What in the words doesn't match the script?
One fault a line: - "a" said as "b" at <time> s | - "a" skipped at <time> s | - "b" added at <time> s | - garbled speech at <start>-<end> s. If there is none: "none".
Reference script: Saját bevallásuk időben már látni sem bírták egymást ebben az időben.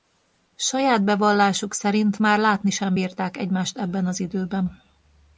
- "időben" said as "szerint" at 1.7 s